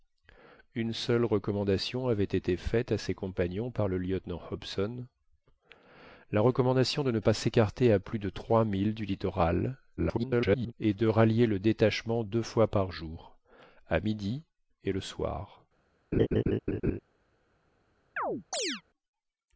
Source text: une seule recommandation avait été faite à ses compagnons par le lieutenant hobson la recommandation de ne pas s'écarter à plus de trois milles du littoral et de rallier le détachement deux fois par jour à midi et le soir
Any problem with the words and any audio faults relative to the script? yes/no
yes